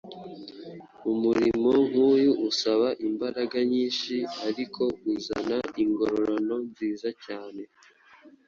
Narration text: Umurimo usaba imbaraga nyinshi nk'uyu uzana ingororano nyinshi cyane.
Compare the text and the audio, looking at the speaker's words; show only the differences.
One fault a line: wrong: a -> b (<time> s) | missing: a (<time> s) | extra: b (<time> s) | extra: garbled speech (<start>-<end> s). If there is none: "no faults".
extra: nk'uyu (1.9 s)
wrong: nk'uyu -> ariko (4.5 s)
wrong: nyinshi -> nziza (6.7 s)